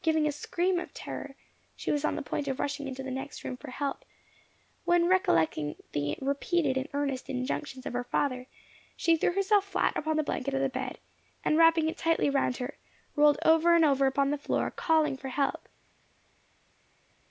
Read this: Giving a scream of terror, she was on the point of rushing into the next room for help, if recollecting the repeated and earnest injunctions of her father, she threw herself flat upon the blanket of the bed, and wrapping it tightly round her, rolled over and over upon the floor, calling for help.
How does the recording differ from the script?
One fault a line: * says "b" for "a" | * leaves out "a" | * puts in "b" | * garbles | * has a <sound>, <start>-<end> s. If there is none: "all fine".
* says "when" for "if"